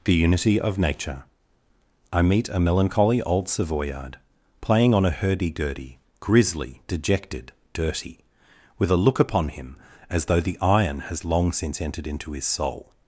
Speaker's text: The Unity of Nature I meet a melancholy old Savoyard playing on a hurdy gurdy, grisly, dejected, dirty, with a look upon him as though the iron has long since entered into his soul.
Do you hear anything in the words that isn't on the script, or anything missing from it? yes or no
no